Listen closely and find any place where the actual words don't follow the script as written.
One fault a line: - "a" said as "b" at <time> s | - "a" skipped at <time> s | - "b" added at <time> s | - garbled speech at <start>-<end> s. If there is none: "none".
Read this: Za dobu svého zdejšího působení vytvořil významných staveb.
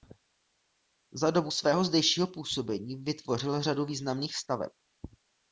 - "řadu" added at 3.6 s